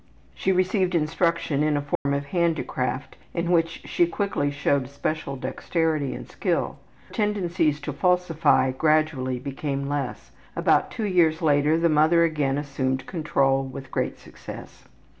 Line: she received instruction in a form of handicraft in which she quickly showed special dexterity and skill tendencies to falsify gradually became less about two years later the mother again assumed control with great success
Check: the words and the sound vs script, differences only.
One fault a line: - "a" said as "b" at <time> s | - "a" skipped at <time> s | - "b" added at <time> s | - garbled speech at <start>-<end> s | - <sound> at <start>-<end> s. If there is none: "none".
- dropout at 2.0-2.1 s